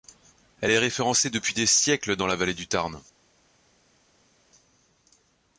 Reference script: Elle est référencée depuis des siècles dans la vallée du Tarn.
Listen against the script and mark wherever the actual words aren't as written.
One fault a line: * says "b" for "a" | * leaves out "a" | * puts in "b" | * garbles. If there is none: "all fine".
all fine